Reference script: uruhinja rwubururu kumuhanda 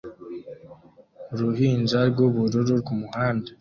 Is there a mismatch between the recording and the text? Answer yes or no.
no